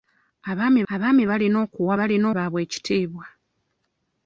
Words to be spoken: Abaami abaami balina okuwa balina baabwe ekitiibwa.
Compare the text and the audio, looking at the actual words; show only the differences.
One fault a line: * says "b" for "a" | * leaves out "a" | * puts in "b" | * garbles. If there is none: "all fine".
all fine